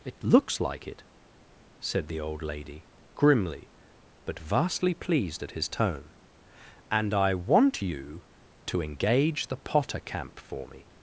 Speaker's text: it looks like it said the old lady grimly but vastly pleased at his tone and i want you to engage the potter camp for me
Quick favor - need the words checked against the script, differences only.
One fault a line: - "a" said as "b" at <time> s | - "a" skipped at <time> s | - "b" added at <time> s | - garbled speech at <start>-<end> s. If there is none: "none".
none